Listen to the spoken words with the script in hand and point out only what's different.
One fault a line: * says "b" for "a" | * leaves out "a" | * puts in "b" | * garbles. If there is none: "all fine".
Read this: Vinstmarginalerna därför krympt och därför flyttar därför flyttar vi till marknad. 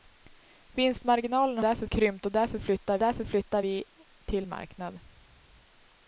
all fine